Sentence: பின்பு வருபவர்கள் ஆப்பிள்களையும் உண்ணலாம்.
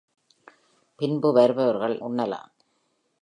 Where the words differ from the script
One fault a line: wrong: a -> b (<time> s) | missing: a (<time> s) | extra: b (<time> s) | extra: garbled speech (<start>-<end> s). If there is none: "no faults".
missing: ஆப்பிள்களையும் (2.0 s)